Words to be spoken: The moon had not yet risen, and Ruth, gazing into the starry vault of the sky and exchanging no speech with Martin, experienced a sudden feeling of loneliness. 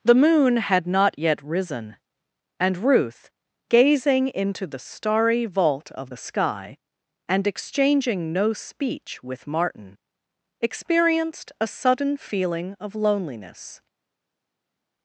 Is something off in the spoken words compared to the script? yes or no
no